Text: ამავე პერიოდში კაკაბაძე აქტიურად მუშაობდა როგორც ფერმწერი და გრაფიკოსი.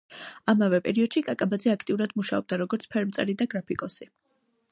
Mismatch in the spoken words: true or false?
false